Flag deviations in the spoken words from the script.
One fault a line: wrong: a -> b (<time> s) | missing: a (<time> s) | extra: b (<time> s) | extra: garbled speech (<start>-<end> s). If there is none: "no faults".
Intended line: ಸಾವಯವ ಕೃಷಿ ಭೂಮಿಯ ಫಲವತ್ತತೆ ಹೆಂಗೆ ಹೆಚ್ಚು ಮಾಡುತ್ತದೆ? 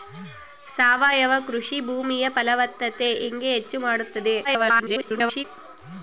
extra: garbled speech (4.4-5.4 s)